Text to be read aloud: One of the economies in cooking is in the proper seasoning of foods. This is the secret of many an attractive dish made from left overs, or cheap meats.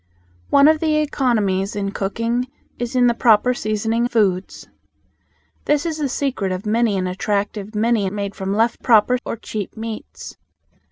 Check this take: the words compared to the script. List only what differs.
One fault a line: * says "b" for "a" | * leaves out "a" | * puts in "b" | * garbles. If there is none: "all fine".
* leaves out "of"
* says "many" for "dish"
* says "proper" for "overs"